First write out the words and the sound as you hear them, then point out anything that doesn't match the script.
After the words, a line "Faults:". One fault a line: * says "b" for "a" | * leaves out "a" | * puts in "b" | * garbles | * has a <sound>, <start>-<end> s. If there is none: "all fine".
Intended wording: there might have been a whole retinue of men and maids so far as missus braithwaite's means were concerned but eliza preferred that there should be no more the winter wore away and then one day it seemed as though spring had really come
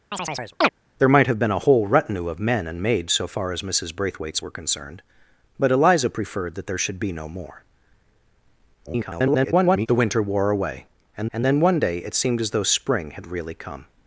there might have been a whole retinue of men and maids so far as missus braithwaite's were concerned but eliza preferred that there should be no more [garbled] the winter wore away and and then one day it seemed as though spring had really come
Faults:
* has a chirp, 0.1-0.7 s
* leaves out "means"
* garbles
* puts in "and"